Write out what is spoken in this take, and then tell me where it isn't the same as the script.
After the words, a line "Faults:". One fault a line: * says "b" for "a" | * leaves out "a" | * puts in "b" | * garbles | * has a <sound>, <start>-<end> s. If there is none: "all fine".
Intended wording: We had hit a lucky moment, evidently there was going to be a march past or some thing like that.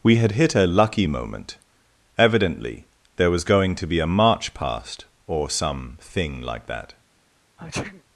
We had hit a lucky moment, evidently there was going to be a march past or some thing like that.
Faults:
* has a sneeze, 7.6-8.0 s